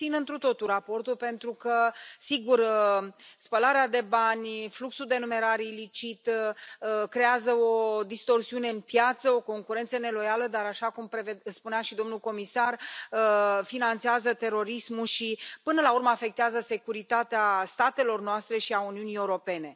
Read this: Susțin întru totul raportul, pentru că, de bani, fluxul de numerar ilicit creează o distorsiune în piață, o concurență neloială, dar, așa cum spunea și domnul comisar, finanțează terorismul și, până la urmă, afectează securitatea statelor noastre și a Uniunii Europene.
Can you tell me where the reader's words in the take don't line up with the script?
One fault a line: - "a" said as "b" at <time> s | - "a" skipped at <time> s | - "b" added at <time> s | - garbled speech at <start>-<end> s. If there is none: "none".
- "sigur spălarea" added at 2.2 s